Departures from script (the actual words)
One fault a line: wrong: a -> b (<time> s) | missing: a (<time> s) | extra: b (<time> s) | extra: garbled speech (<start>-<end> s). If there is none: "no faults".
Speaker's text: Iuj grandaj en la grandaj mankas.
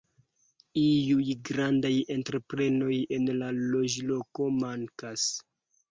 extra: entreprenoj (2.1 s)
wrong: grandaj -> loĝloko (3.6 s)